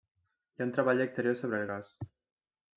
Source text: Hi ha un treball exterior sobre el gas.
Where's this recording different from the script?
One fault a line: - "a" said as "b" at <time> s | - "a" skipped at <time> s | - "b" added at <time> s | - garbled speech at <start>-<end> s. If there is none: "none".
none